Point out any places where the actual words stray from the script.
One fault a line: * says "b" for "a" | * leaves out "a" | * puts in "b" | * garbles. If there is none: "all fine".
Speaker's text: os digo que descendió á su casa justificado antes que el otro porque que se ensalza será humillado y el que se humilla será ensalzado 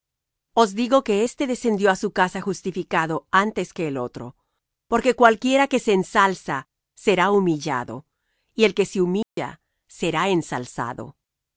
* puts in "éste"
* puts in "cualquiera"